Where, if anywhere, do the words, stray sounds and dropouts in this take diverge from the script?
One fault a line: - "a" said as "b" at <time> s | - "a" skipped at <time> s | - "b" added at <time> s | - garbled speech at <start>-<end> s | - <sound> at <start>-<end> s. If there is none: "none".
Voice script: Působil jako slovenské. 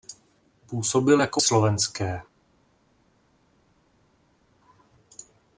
none